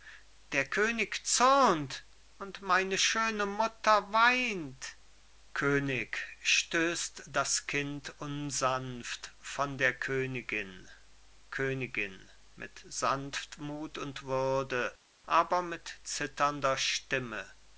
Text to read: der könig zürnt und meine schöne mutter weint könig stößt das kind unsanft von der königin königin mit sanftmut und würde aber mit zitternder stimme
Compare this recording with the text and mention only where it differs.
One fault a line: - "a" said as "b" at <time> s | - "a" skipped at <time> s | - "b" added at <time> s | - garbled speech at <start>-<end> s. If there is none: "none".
none